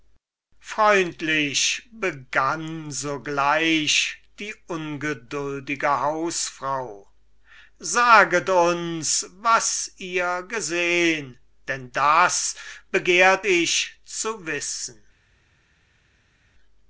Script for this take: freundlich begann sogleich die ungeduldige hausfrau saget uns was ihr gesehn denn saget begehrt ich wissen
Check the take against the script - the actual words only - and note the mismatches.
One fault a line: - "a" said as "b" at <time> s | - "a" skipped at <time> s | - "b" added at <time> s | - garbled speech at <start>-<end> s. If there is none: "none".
- "saget" said as "das" at 11.9 s
- "zu" added at 14.0 s